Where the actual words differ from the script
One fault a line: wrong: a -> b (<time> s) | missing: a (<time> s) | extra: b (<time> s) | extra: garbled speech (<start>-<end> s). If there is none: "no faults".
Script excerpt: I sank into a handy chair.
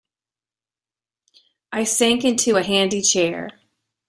no faults